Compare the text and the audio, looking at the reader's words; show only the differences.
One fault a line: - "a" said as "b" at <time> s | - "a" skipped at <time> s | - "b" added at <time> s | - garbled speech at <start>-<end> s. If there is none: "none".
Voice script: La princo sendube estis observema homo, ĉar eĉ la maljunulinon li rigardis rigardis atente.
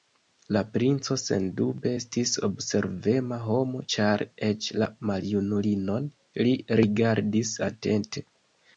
- "rigardis" skipped at 7.6 s